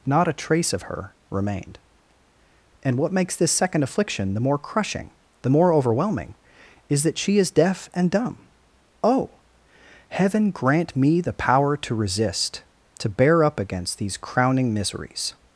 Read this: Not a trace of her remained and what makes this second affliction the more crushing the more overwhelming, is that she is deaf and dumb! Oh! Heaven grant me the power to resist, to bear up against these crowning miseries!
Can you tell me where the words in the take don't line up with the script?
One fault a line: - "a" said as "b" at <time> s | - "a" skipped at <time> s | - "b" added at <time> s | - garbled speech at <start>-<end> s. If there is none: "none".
none